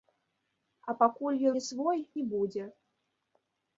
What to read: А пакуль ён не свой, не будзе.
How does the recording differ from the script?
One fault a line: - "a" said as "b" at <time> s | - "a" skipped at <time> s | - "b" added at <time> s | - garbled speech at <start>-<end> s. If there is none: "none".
none